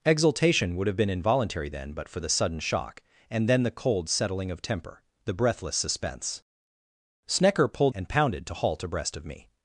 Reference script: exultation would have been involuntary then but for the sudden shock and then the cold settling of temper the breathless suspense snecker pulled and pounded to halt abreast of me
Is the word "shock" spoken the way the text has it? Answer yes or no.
yes